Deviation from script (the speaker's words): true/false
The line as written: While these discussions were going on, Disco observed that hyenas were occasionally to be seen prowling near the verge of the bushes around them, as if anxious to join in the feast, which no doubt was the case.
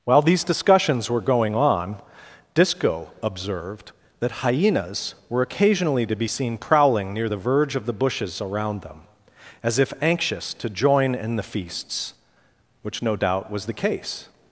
true